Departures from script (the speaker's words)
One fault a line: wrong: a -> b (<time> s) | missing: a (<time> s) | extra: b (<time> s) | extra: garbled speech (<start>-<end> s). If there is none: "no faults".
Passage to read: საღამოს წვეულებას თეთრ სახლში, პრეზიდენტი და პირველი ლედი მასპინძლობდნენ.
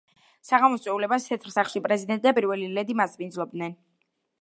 no faults